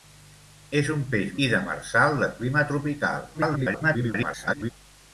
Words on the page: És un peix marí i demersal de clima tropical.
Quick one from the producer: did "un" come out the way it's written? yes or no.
yes